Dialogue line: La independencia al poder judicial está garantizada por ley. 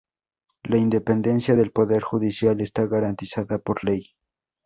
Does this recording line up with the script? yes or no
no